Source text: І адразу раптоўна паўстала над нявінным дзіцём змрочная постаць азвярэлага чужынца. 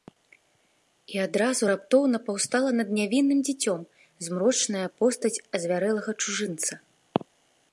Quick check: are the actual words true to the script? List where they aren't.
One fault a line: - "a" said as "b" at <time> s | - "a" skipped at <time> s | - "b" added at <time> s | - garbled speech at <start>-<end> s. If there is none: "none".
none